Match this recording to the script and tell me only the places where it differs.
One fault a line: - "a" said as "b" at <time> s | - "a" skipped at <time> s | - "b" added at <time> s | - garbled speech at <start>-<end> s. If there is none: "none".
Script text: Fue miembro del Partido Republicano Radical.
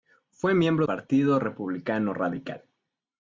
- "del" skipped at 0.9 s